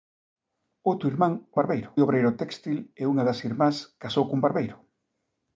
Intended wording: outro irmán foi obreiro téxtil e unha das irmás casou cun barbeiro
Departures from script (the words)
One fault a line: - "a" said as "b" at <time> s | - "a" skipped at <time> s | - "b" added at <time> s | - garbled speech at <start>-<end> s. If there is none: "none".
- "foi" said as "barbeiro" at 1.6 s